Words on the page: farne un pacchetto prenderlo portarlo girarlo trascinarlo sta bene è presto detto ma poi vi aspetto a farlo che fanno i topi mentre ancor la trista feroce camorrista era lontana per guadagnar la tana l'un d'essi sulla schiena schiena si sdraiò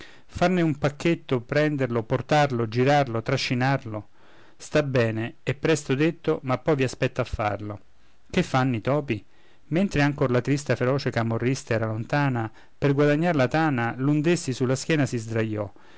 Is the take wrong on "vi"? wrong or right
right